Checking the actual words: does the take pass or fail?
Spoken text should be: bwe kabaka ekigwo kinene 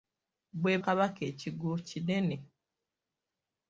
pass